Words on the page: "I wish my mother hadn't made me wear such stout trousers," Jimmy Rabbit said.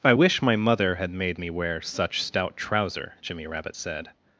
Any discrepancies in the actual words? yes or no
yes